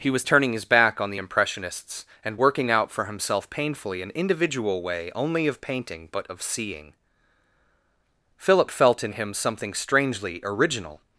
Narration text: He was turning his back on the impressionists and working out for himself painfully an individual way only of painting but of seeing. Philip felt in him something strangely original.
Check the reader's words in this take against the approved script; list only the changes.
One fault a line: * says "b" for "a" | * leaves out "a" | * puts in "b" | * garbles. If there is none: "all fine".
all fine